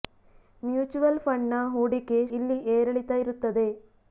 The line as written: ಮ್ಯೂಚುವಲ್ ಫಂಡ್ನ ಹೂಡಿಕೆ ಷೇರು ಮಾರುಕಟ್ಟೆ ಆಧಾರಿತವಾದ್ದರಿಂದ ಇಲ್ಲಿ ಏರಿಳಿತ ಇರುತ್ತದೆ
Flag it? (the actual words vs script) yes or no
yes